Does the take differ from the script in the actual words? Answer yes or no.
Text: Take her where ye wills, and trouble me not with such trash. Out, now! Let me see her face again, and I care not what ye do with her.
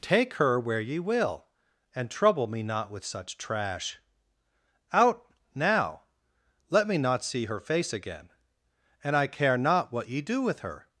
yes